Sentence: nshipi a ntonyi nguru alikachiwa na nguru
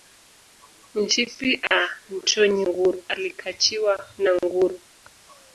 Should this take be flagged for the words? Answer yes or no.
no